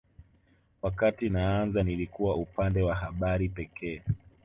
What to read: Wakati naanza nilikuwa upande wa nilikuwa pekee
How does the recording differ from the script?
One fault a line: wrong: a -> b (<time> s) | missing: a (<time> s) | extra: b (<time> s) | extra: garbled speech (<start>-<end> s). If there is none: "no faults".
wrong: nilikuwa -> habari (2.9 s)